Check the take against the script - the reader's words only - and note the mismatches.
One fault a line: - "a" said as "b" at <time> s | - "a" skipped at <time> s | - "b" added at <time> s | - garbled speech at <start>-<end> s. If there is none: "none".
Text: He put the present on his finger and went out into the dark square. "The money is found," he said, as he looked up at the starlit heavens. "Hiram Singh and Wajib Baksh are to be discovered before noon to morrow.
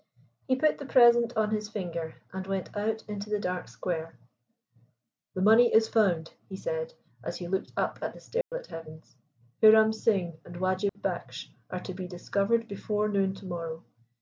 none